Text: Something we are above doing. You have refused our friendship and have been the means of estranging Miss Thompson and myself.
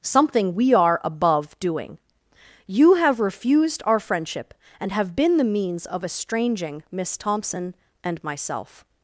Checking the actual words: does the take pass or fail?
pass